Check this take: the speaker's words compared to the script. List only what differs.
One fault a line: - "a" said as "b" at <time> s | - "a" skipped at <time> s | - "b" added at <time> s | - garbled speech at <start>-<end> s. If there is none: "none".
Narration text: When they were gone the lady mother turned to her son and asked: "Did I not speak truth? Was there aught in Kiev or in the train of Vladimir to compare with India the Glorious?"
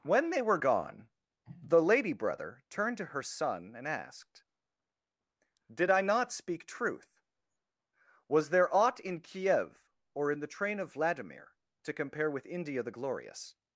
- "mother" said as "brother" at 2.1 s